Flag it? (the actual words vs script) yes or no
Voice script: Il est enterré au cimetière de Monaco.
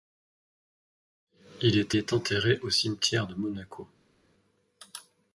yes